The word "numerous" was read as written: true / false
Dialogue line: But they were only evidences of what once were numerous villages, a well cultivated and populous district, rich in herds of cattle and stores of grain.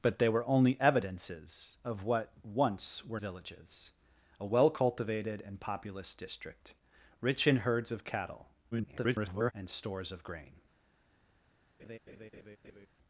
false